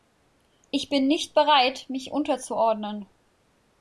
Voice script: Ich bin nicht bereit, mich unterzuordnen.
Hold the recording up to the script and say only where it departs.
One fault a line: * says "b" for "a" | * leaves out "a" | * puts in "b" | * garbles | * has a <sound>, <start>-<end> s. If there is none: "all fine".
all fine